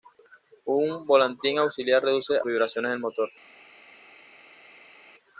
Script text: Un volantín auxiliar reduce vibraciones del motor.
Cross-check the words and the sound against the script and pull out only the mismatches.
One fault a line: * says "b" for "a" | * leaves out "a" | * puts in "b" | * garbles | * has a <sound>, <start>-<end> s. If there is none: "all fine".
all fine